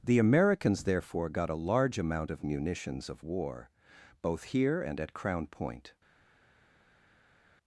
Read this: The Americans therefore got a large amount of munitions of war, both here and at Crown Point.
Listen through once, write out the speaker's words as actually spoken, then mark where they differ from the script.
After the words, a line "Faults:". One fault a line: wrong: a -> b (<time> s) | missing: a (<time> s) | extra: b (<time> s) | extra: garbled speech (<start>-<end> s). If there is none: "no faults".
The Americans therefore got a large amount of munitions of war, both here and at Crown Point.
Faults:
no faults